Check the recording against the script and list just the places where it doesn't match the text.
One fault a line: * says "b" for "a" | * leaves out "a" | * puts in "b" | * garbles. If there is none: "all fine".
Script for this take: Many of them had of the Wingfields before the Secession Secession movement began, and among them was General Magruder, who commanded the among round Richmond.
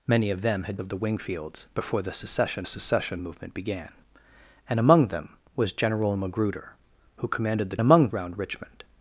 all fine